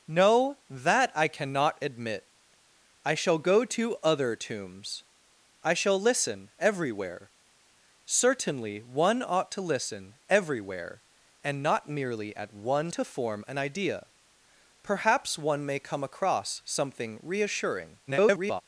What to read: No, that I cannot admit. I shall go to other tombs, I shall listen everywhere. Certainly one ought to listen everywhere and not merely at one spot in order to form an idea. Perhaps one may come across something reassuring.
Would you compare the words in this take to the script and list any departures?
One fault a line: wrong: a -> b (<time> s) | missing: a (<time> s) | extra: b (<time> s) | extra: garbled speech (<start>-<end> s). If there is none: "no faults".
missing: spot in order (12.9 s)
extra: garbled speech (18.1-18.6 s)